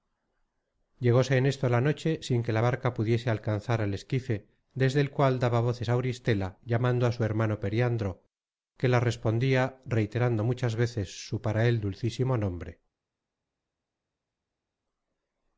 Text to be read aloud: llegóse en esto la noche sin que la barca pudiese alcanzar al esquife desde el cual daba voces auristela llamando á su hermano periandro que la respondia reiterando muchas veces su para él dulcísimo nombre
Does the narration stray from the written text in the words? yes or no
no